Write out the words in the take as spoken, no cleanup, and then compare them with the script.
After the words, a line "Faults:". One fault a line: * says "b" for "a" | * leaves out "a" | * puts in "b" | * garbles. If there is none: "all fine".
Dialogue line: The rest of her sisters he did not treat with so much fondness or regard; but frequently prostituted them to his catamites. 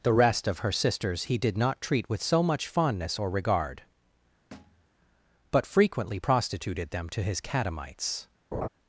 The rest of her sisters he did not treat with so much fondness or regard; but frequently prostituted them to his catamites.
Faults:
all fine